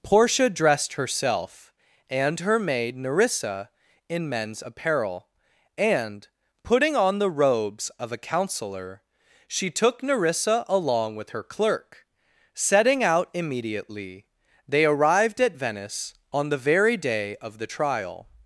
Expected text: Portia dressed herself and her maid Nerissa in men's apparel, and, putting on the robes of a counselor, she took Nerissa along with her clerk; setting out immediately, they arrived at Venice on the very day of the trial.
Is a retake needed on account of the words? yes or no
no